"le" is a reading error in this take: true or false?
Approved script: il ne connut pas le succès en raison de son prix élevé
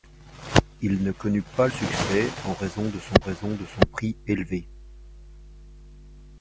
true